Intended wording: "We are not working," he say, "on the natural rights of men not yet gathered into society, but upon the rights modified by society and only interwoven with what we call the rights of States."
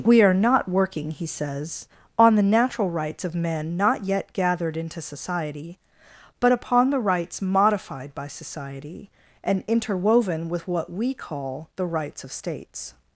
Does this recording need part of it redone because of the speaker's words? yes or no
yes